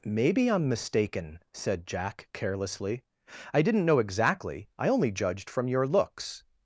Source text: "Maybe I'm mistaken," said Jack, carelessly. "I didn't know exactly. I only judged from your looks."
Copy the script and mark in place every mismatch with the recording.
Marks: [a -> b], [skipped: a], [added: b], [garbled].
"Maybe I'm mistaken," said Jack, carelessly. "I didn't know exactly. I only judged from your looks."